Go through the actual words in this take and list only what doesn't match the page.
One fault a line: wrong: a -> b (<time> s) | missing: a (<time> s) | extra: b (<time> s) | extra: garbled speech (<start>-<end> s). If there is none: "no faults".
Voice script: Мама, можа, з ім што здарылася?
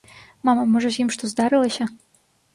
no faults